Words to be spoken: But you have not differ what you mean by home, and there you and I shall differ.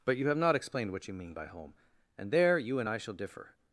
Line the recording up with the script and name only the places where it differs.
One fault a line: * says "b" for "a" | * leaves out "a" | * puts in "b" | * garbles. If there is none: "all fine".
* says "explained" for "differ"